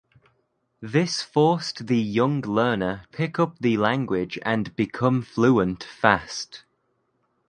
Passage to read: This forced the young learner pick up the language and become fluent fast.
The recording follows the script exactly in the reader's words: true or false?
true